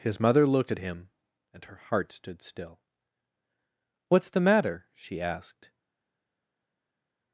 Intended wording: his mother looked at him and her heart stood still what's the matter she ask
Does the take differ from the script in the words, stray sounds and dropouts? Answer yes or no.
yes